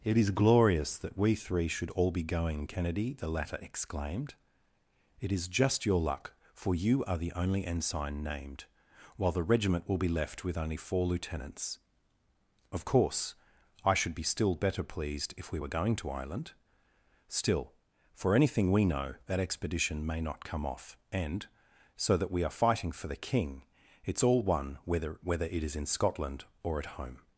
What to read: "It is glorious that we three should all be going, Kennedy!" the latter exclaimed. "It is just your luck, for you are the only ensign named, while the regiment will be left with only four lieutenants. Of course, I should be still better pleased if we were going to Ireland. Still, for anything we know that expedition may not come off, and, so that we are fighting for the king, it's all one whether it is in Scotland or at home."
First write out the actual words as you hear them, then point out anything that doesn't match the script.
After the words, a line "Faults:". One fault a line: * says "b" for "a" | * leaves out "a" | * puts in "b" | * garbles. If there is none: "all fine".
"It is glorious that we three should all be going, Kennedy!" the latter exclaimed. "It is just your luck, for you are the only ensign named, while the regiment will be left with only four lieutenants. Of course, I should be still better pleased if we were going to Ireland. Still, for anything we know that expedition may not come off, and, so that we are fighting for the king, it's all one whether whether it is in Scotland or at home."
Faults:
* puts in "whether"